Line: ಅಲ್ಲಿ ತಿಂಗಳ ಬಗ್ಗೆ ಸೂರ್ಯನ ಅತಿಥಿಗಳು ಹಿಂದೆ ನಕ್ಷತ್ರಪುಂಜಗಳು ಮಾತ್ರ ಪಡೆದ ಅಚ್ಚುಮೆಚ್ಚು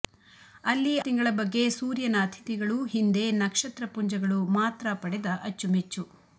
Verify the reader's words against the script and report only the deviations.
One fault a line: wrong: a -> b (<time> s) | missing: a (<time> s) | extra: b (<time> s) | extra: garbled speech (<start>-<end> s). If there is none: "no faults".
no faults